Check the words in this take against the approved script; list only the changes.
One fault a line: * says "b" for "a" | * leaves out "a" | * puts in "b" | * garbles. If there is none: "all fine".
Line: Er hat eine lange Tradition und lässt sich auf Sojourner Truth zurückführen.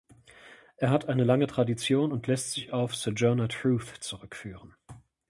all fine